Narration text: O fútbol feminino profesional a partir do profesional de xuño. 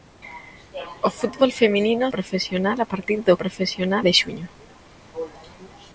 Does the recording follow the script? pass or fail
pass